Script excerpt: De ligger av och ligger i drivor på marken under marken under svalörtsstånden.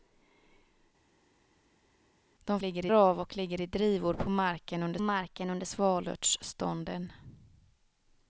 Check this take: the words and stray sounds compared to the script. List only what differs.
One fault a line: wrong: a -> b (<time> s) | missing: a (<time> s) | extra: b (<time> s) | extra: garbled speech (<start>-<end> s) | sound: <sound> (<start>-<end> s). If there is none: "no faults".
no faults